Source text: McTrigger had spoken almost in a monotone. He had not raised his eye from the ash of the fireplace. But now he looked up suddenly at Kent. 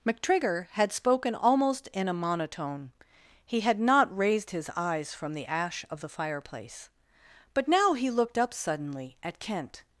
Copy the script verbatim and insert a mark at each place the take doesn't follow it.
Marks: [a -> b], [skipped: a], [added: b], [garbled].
McTrigger had spoken almost in a monotone. He had not raised his [eye -> eyes] from the ash of the fireplace. But now he looked up suddenly at Kent.